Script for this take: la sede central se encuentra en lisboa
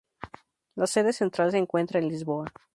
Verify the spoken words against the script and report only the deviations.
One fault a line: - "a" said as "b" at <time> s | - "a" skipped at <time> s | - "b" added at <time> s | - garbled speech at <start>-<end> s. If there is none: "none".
none